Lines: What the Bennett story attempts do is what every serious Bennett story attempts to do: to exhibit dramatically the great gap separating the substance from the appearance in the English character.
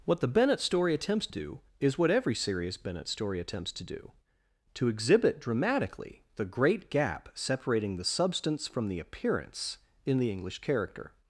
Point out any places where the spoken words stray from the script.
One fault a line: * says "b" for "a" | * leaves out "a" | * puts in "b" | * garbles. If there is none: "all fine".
all fine